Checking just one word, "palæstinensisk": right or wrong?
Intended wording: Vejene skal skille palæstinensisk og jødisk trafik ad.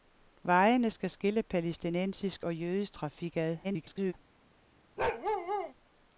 right